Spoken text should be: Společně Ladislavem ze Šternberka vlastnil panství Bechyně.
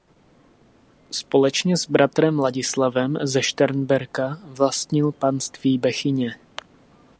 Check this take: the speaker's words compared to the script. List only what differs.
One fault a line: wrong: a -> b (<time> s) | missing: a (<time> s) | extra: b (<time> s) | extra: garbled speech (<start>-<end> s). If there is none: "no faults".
extra: s bratrem (1.8 s)